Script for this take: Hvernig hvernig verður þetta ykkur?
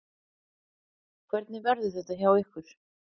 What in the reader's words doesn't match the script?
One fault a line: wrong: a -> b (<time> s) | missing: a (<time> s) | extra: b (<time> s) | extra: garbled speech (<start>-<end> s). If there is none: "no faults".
missing: hvernig (1.6 s)
extra: hjá (2.2 s)